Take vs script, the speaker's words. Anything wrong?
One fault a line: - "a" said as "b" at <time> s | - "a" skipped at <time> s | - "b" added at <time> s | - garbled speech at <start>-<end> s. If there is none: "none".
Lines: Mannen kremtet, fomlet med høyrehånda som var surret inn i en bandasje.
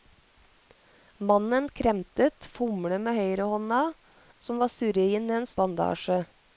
none